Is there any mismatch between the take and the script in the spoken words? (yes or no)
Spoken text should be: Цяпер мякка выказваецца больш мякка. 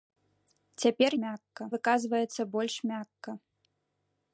no